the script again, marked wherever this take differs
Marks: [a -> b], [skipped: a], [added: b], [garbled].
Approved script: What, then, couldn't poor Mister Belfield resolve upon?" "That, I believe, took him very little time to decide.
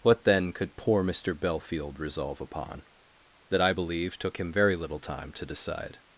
What, then, [couldn't -> could] poor Mister Belfield resolve upon?" "That, I believe, took him very little time to decide.